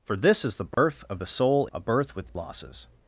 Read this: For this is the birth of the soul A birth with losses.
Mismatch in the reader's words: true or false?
false